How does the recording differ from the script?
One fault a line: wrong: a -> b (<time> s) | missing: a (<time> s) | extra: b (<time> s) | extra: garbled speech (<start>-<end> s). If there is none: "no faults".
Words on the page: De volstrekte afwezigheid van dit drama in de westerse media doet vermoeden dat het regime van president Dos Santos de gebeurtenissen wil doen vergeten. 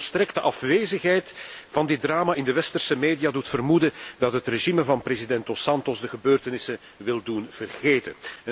no faults